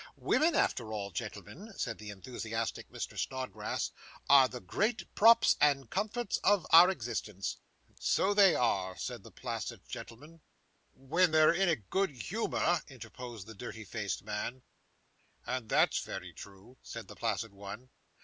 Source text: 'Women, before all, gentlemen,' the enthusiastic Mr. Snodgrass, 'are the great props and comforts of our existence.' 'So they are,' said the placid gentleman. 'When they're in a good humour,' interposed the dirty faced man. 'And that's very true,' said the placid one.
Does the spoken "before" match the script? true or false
false